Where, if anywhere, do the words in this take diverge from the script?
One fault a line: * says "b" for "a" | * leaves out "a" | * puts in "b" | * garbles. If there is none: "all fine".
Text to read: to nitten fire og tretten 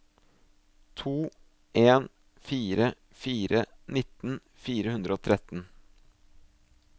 * puts in "en fire fire"
* puts in "hundre"